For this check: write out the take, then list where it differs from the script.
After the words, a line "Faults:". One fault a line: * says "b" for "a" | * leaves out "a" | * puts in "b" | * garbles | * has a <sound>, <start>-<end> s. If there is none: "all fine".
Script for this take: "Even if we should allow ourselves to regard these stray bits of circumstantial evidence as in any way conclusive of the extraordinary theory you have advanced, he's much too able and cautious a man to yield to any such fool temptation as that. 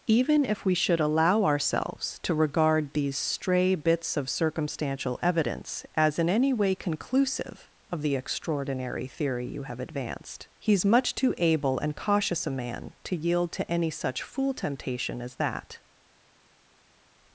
"Even if we should allow ourselves to regard these stray bits of circumstantial evidence as in any way conclusive of the extraordinary theory you have advanced, he's much too able and cautious a man to yield to any such fool temptation as that.
Faults:
all fine